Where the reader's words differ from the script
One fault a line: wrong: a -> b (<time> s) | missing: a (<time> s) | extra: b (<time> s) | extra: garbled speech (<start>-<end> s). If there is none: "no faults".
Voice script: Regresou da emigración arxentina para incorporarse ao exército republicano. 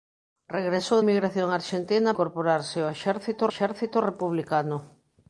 missing: da (1.0 s)
missing: para (2.1 s)
extra: exército (3.5 s)